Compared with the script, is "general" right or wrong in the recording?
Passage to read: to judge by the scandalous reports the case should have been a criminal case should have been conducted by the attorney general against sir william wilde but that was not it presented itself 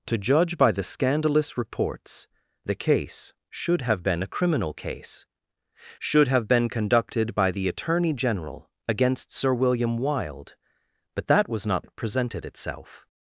right